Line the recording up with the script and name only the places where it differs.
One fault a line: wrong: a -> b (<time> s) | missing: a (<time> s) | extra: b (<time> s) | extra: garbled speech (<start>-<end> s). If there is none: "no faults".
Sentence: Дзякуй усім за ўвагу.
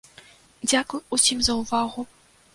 no faults